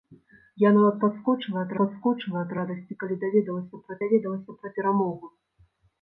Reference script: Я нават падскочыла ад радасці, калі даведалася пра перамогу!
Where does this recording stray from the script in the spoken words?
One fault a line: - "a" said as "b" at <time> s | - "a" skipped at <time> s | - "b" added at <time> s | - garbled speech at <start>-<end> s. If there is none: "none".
- "падскочыла ад" added at 1.8 s
- "даведалася пра" added at 4.0 s